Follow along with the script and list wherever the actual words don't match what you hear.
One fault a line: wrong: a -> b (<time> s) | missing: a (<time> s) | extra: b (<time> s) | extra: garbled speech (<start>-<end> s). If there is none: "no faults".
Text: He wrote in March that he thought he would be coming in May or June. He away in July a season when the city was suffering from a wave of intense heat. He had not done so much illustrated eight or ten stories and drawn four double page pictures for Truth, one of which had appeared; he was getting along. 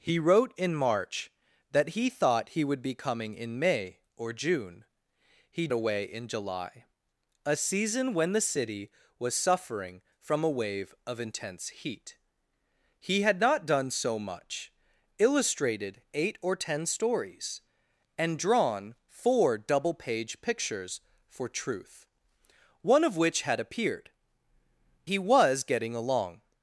no faults